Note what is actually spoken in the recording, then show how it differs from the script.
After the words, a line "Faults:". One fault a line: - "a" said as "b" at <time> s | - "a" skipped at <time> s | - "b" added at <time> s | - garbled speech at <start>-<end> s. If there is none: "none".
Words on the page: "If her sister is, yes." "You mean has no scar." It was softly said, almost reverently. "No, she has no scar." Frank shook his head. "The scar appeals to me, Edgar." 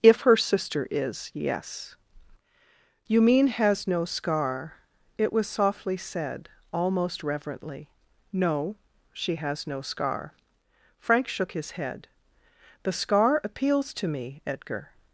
"If her sister is, yes." "You mean has no scar." It was softly said, almost reverently. "No, she has no scar." Frank shook his head. "The scar appeals to me, Edgar."
Faults:
none